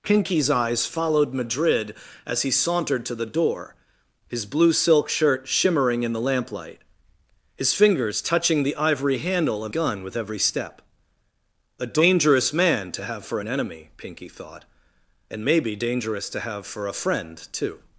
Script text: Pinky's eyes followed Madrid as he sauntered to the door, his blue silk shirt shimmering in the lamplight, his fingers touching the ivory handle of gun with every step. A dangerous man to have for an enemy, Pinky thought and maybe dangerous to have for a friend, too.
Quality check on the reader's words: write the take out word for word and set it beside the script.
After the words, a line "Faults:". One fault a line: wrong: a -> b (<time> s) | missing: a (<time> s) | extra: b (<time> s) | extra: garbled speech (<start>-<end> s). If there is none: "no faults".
Pinky's eyes followed Madrid as he sauntered to the door, his blue silk shirt shimmering in the lamplight, his fingers touching the ivory handle of gun with every step. A dangerous man to have for an enemy, Pinky thought and maybe dangerous to have for a friend, too.
Faults:
no faults